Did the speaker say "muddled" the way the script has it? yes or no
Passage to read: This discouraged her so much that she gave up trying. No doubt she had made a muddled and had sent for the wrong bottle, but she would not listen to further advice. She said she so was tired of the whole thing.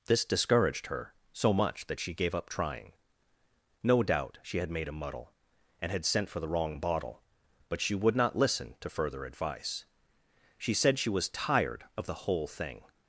no